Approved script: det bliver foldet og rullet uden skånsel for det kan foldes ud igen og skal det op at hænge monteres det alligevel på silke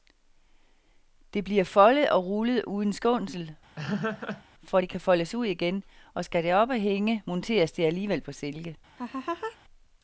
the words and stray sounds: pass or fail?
fail